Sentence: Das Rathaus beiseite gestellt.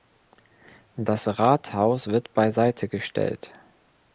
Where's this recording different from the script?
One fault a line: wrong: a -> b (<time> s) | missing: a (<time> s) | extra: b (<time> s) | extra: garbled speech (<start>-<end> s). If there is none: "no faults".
extra: wird (2.1 s)